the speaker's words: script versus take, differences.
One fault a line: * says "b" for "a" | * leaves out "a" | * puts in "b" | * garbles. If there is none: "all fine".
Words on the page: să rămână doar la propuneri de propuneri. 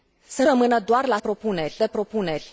all fine